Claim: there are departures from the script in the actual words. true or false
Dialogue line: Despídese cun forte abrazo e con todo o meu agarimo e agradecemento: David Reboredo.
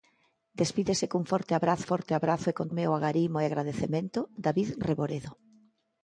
true